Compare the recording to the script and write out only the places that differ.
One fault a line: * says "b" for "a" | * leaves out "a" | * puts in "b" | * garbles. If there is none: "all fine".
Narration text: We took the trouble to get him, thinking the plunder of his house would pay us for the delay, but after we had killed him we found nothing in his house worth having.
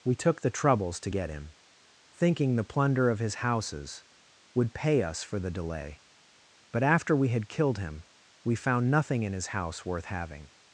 * says "troubles" for "trouble"
* says "houses" for "house"